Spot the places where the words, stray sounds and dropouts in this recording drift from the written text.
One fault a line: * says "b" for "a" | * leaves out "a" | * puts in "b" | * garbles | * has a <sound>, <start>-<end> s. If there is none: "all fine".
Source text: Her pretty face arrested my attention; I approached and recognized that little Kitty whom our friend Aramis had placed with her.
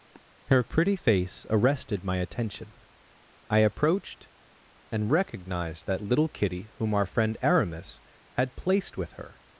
* has a sniff, 0.1-0.2 s